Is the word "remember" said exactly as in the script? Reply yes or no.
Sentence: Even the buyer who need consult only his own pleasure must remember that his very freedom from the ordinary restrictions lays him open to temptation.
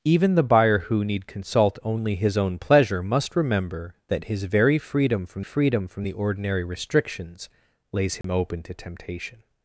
yes